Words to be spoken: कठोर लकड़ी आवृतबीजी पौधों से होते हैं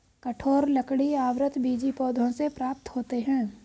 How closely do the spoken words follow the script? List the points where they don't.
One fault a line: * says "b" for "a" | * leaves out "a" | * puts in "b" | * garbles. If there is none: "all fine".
* puts in "प्राप्त"